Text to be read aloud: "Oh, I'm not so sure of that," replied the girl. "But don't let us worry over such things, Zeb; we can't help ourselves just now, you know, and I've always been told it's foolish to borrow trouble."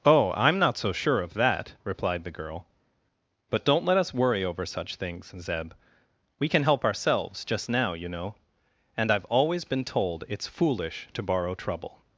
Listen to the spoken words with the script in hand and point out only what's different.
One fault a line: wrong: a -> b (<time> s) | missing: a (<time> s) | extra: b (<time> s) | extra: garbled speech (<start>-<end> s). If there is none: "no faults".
wrong: can't -> can (6.5 s)